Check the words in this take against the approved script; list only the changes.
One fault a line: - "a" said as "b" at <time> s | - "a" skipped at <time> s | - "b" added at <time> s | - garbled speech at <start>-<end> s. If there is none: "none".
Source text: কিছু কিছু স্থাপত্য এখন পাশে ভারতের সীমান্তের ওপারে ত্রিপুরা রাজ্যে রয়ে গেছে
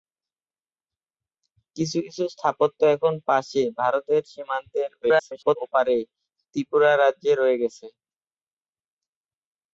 - garbled speech at 5.0-5.6 s